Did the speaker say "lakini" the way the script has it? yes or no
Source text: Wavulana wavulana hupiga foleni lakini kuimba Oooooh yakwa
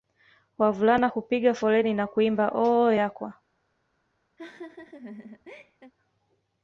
no